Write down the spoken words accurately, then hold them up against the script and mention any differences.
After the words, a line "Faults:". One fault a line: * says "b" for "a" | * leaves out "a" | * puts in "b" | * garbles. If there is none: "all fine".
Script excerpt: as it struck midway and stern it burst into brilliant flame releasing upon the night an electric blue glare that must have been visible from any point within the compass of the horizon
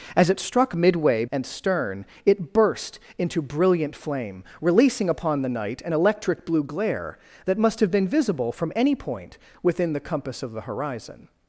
as it struck midway and stern it burst into brilliant flame releasing upon the night an electric blue glare that must have been visible from any point within the compass of the horizon
Faults:
all fine